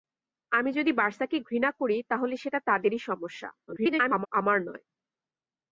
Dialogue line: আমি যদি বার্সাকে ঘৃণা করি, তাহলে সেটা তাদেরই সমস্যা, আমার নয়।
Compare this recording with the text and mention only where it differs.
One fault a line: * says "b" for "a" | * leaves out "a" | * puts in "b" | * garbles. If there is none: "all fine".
* garbles